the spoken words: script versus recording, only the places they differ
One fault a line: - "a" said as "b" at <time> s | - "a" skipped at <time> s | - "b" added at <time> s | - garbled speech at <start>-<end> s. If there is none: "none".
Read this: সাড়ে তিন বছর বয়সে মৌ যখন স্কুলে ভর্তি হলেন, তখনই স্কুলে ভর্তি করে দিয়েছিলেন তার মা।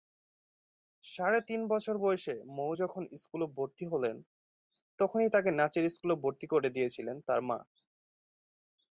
- "তাকে নাচের" added at 5.3 s